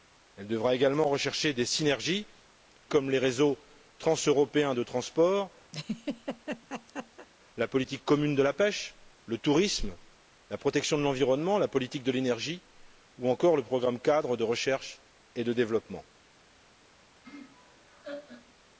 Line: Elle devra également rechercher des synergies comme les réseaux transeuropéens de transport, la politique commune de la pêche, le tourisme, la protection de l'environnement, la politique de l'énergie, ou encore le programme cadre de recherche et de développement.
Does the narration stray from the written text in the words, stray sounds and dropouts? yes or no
yes